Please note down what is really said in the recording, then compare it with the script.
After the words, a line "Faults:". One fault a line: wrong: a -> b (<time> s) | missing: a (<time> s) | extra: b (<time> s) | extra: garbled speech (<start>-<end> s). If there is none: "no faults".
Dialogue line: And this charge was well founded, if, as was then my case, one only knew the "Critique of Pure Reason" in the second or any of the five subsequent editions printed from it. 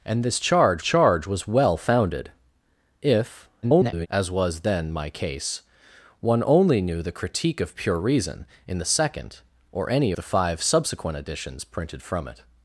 And this charge charge was well founded, if, [garbled] as was then my case, one only knew the "Critique of Pure Reason" in the second or any the five subsequent editions printed from it.
Faults:
extra: charge (0.8 s)
extra: garbled speech (3.6-4.1 s)
missing: of (10.1 s)